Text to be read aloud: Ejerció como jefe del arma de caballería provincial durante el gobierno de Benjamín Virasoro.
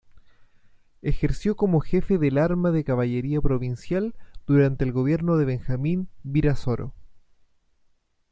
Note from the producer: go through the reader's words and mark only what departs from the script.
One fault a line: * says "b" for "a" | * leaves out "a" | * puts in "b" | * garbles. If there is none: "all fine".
all fine